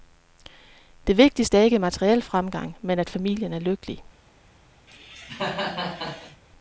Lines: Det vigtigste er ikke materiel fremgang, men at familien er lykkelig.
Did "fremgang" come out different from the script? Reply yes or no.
no